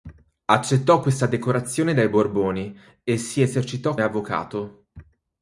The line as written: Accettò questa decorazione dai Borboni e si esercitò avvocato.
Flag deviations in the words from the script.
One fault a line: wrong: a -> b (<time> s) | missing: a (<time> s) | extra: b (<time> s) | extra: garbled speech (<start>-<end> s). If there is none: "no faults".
no faults